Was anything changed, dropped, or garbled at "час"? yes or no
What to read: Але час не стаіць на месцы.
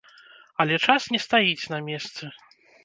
no